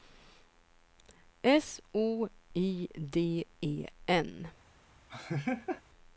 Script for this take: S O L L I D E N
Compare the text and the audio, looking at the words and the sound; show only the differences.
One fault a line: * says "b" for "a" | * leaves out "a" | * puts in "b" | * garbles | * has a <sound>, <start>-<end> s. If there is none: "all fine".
* leaves out "L L"
* has a laugh, 5.1-5.8 s